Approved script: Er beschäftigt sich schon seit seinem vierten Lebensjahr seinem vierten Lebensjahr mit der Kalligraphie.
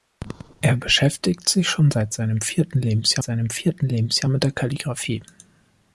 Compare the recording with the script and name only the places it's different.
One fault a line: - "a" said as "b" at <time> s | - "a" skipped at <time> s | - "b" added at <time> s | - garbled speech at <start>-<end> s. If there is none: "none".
none